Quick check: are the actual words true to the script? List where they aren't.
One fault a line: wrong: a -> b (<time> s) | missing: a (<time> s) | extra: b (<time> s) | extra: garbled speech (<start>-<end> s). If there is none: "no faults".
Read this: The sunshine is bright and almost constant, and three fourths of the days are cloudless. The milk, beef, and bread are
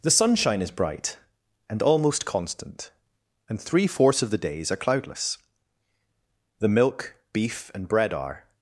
no faults